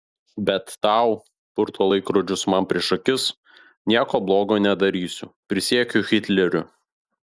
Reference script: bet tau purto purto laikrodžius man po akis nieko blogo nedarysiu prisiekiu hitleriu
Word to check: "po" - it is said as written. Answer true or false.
false